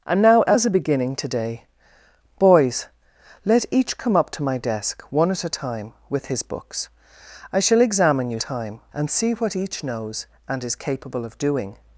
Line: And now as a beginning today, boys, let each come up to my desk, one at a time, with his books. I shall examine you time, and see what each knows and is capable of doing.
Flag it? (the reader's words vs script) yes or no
no